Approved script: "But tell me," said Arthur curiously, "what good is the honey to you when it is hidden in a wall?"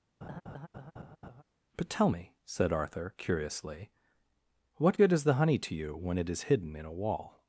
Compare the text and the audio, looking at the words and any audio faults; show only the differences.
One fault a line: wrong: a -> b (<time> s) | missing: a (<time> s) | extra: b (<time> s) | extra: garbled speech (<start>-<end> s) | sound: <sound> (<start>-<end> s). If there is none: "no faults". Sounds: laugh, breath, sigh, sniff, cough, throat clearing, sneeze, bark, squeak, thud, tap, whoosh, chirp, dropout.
sound: laugh (0.2-1.4 s)